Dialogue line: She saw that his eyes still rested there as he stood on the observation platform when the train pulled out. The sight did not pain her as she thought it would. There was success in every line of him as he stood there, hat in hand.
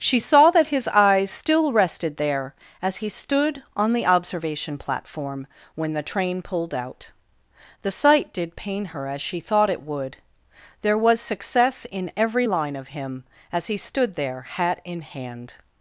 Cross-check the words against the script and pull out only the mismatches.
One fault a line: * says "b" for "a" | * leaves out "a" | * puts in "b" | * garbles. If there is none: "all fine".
* leaves out "not"